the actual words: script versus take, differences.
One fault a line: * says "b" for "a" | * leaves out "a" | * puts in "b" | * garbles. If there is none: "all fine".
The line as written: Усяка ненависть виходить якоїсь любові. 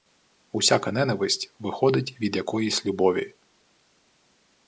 * puts in "від"